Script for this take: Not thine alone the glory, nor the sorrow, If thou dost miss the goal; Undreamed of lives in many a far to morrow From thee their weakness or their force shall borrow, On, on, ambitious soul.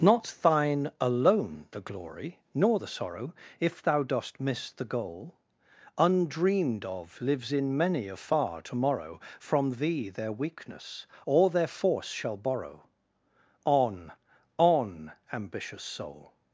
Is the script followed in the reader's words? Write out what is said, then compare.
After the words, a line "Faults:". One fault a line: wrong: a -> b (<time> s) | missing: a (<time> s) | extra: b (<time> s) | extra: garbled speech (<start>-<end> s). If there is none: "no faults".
Not thine alone the glory, nor the sorrow, If thou dost miss the goal; Undreamed of lives in many a far to morrow From thee their weakness or their force shall borrow, On, on, ambitious soul.
Faults:
no faults